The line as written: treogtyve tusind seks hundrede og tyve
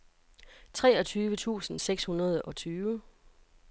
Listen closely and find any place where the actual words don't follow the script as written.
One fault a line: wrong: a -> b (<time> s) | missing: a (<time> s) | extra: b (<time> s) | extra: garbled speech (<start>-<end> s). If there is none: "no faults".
no faults